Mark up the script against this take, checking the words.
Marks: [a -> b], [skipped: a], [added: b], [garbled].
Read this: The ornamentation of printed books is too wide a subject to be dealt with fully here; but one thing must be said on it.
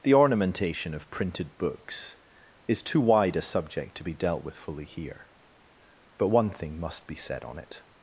The ornamentation of printed books is too wide a subject to be dealt with fully here; but one thing must be said on it.